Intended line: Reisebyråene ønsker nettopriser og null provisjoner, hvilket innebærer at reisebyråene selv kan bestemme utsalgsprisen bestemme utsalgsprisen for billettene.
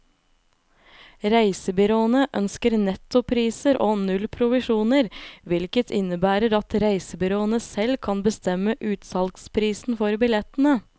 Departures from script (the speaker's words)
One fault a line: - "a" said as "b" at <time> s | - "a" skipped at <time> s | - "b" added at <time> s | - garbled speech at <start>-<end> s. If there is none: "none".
- "bestemme utsalgsprisen" skipped at 10.0 s